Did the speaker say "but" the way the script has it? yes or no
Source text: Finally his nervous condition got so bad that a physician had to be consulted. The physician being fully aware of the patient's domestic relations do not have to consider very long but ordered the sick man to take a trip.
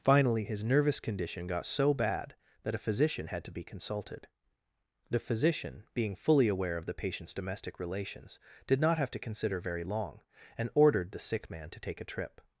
no